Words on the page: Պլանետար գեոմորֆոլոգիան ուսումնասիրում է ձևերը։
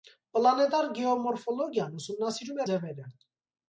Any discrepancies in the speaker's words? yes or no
no